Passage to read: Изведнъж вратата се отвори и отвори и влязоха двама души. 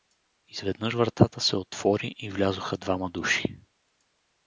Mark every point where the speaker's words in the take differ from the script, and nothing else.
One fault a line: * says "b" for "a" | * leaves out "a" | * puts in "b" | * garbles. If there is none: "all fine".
* leaves out "отвори и"